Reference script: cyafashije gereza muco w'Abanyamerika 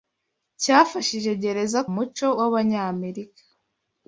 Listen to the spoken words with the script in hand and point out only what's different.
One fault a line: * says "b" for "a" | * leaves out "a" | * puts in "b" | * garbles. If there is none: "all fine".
all fine